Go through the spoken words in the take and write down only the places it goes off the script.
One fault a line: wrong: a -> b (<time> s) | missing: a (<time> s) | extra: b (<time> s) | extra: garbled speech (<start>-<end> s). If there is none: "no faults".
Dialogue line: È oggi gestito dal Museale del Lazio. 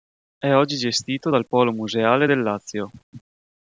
extra: Polo (1.5 s)